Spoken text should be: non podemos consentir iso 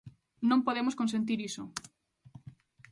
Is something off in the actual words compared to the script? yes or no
no